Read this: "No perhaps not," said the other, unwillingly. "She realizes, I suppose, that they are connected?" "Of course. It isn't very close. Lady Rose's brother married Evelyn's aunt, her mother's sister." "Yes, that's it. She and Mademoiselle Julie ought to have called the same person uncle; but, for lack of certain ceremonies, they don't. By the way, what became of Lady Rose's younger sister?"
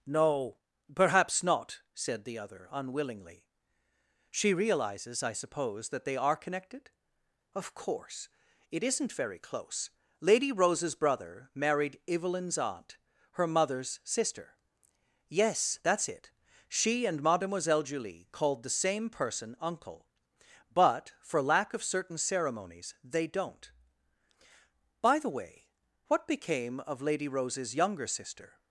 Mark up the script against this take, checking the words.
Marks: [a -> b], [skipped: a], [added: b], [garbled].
"No perhaps not," said the other, unwillingly. "She realizes, I suppose, that they are connected?" "Of course. It isn't very close. Lady Rose's brother married Evelyn's aunt, her mother's sister." "Yes, that's it. She and Mademoiselle Julie [skipped: ought to have] called the same person uncle; but, for lack of certain ceremonies, they don't. By the way, what became of Lady Rose's younger sister?"